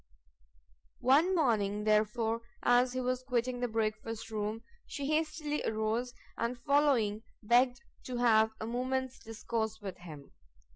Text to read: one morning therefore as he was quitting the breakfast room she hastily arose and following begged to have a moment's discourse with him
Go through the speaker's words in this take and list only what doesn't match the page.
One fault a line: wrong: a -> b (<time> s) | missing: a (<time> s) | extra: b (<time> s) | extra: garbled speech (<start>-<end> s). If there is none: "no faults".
no faults